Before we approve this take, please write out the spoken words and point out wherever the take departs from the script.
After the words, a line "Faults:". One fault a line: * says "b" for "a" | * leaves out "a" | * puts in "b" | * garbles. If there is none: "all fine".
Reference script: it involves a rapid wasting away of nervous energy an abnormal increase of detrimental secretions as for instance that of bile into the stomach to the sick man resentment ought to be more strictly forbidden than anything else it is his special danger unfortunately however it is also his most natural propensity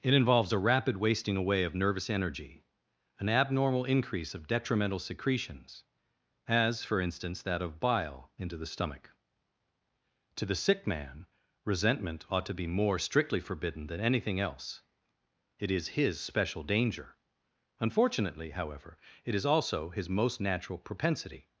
it involves a rapid wasting away of nervous energy an abnormal increase of detrimental secretions as for instance that of bile into the stomach to the sick man resentment ought to be more strictly forbidden than anything else it is his special danger unfortunately however it is also his most natural propensity
Faults:
all fine